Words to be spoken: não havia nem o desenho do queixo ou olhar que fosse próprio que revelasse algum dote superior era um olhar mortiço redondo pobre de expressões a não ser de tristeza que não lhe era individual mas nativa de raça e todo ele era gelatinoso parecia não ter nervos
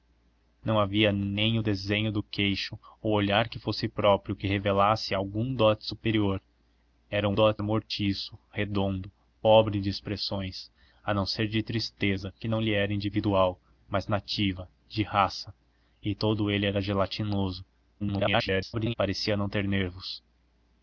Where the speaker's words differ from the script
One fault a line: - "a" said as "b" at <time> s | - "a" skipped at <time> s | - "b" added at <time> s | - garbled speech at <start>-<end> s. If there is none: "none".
- "olhar" said as "dote" at 7.3 s
- garbled speech at 18.0-18.9 s